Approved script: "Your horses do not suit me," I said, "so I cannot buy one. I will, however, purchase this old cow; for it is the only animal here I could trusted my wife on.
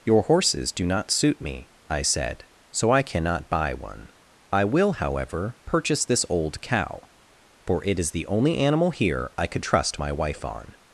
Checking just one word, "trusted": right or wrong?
wrong